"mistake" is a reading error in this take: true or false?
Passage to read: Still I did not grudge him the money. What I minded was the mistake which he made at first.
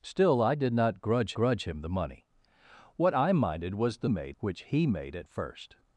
true